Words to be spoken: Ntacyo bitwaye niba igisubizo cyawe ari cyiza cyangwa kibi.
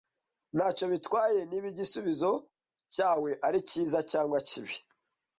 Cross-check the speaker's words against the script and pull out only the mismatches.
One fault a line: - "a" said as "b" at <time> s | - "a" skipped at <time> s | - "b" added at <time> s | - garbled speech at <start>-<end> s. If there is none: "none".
none